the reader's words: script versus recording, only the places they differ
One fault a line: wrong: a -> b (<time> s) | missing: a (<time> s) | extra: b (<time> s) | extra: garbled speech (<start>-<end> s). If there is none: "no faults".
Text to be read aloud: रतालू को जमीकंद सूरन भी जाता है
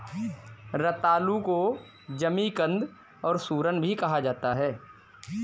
extra: और (3.2 s)
extra: कहा (3.9 s)